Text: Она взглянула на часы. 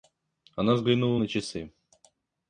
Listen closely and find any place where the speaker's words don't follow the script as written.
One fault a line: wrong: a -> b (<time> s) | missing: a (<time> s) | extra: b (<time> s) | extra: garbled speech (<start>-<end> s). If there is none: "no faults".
no faults